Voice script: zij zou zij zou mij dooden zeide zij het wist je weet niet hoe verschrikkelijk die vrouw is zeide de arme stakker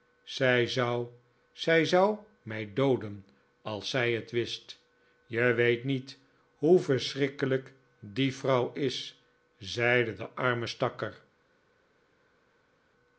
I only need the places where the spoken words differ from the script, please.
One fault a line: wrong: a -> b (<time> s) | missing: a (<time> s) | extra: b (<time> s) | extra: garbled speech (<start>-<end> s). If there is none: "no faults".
wrong: zeide -> als (3.6 s)